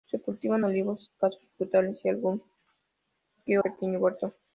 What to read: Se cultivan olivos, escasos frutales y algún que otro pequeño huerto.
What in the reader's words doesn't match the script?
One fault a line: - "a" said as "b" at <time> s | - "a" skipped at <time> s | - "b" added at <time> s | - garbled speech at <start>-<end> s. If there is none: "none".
- "otro" skipped at 3.6 s